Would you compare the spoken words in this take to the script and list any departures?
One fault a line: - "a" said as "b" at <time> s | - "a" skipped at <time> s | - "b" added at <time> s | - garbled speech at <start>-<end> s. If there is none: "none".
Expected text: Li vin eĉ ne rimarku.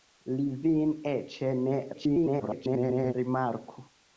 - garbled speech at 1.9-3.1 s